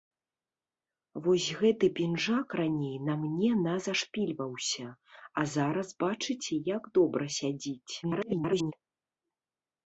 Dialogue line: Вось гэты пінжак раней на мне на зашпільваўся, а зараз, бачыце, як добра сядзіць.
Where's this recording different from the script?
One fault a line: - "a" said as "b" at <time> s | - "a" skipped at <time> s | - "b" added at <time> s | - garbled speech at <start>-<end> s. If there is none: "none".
- garbled speech at 8.0-8.7 s